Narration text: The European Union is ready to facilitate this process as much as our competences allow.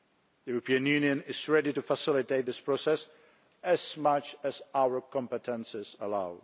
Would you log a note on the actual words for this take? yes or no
no